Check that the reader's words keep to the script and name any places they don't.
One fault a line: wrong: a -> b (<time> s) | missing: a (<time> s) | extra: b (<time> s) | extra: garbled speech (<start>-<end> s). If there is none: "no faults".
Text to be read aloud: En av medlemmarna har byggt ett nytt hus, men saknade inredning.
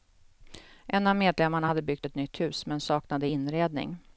wrong: har -> hade (1.6 s)